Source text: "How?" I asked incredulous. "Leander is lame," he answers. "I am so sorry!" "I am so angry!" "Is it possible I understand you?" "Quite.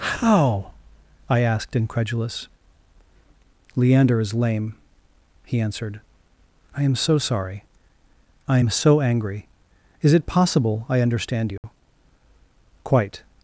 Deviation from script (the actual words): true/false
true